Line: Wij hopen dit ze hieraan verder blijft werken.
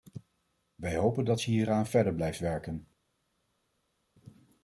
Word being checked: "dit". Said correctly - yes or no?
no